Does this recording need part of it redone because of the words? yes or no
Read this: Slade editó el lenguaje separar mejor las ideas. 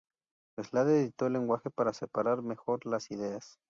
yes